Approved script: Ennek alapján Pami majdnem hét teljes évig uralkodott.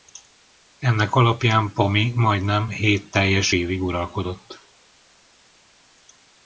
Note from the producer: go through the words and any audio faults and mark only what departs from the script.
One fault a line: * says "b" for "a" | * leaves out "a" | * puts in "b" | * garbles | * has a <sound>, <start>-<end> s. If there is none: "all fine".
all fine